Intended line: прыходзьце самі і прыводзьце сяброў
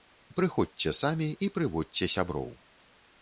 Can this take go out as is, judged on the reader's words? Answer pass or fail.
pass